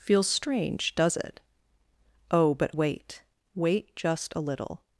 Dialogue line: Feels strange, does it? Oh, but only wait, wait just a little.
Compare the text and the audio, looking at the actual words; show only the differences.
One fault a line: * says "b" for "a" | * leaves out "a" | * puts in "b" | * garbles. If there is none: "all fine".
* leaves out "only"